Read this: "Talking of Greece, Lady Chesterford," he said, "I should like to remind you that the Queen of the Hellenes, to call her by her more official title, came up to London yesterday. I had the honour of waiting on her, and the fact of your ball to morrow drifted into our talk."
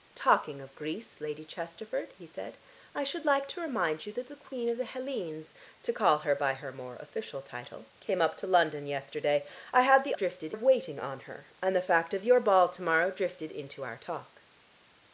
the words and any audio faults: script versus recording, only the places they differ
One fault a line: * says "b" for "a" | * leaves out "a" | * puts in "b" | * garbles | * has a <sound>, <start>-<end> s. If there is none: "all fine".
* says "drifted" for "honour"